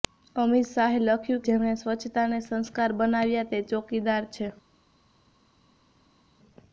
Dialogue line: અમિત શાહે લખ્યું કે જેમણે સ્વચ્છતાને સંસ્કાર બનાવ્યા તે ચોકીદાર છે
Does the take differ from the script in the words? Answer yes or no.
yes